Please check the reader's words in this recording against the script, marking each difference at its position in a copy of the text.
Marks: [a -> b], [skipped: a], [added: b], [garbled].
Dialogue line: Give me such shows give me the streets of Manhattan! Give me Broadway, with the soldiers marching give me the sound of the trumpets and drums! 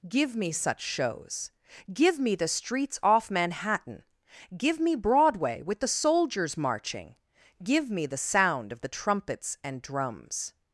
Give me such shows give me the streets [of -> off] Manhattan! Give me Broadway, with the soldiers marching give me the sound of the trumpets and drums!